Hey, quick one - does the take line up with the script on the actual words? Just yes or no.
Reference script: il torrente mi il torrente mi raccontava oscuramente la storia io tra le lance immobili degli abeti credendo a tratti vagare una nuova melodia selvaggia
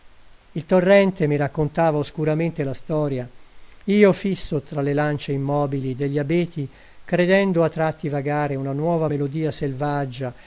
no